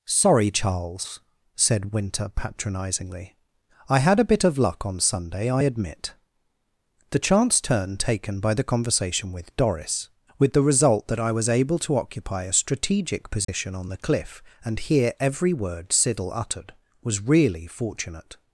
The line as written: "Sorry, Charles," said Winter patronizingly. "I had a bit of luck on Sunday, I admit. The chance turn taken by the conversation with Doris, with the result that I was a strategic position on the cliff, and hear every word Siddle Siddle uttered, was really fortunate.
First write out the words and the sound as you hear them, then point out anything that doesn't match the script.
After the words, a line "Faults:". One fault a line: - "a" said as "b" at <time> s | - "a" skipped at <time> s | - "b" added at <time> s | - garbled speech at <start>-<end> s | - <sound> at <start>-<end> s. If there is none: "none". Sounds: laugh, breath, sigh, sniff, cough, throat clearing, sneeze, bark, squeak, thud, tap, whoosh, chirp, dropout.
"Sorry, Charles," said Winter patronizingly. "I had a bit of luck on Sunday, I admit. The chance turn taken by the conversation with Doris, with the result that I was able to occupy a strategic position on the cliff, and hear every word Siddle uttered, was really fortunate.
Faults:
- "able to occupy" added at 11.5 s
- dropout at 13.4-13.5 s
- "Siddle" skipped at 16.3 s